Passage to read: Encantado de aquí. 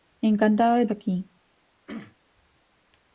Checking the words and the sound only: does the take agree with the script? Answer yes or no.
no